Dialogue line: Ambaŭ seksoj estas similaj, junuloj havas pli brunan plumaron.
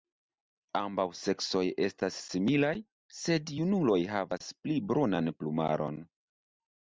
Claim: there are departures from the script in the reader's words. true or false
true